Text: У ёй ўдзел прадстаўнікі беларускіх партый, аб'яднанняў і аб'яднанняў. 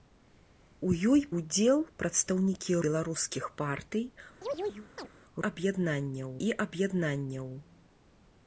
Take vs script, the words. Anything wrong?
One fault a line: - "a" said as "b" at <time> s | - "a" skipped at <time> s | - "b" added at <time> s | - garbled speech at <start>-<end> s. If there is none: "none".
none